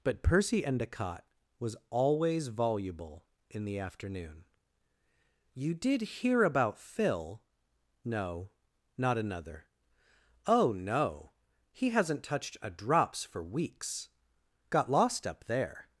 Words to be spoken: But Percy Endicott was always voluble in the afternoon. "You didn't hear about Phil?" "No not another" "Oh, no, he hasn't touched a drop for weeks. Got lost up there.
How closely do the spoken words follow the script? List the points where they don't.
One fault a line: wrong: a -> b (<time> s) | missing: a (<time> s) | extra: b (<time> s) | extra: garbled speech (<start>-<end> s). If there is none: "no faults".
wrong: didn't -> did (5.7 s)
wrong: drop -> drops (12.7 s)